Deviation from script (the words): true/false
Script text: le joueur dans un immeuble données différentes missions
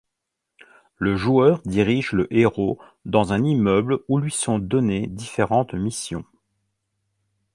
true